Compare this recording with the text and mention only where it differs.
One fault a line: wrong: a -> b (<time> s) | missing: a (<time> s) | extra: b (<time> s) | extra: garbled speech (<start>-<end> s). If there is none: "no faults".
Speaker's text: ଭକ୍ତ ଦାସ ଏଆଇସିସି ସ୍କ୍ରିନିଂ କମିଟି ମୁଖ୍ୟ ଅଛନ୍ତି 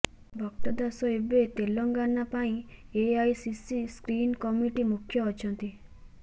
extra: ଏବେ ତେଲେଙ୍ଗାନା ପାଇଁ (1.1 s)